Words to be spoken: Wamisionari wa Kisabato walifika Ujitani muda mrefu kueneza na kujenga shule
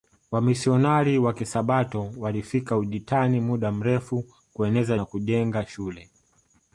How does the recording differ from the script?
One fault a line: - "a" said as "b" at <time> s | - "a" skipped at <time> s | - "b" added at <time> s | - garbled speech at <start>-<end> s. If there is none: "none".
none